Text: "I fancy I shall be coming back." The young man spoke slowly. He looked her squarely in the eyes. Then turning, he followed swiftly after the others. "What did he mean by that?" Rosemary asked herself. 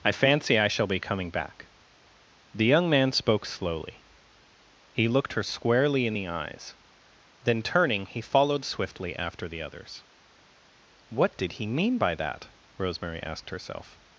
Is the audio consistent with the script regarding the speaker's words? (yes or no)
yes